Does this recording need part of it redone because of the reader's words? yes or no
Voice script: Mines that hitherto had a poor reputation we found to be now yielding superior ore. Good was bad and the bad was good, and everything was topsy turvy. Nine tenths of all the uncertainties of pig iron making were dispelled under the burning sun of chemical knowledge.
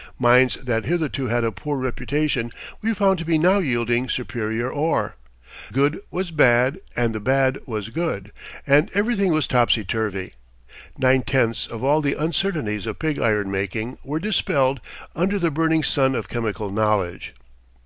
no